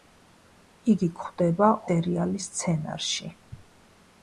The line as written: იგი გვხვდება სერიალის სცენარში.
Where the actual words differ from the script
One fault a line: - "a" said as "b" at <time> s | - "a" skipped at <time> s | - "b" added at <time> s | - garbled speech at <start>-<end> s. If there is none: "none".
none